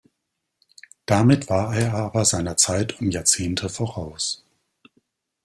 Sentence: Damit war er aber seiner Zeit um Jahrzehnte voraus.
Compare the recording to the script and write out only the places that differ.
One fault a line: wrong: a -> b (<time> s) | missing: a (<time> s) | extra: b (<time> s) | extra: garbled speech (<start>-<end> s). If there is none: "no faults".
no faults